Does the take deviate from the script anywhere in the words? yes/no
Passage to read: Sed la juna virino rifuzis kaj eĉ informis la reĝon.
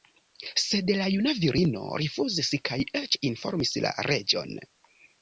no